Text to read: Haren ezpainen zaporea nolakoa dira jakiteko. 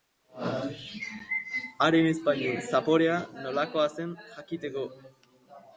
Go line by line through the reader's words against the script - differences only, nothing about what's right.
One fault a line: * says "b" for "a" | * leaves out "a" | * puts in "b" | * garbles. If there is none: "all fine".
* says "zen" for "dira"